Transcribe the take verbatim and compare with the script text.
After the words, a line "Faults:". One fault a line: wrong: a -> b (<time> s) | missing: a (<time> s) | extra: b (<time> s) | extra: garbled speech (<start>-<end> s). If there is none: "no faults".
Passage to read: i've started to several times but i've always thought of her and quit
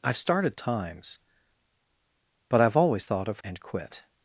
i've started times but i've always thought of and quit
Faults:
missing: to several (0.6 s)
missing: her (3.4 s)